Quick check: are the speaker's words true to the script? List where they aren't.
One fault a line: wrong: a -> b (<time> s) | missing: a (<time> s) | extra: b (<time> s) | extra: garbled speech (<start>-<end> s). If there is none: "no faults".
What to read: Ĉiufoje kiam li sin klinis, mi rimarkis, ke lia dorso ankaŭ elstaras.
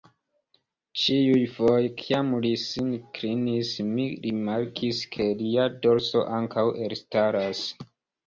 no faults